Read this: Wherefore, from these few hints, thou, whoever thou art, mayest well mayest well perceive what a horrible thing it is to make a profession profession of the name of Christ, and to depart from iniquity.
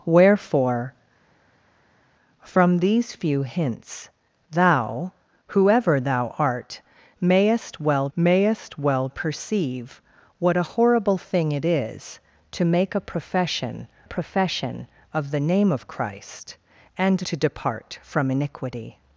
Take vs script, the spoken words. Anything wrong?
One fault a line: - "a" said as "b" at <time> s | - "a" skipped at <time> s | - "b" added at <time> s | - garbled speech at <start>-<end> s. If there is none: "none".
none